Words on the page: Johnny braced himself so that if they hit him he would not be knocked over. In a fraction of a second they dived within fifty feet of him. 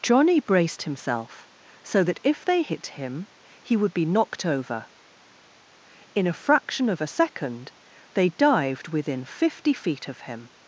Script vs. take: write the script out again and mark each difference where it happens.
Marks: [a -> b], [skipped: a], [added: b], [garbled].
Johnny braced himself so that if they hit him he would [skipped: not] be knocked over. In a fraction of a second they dived within fifty feet of him.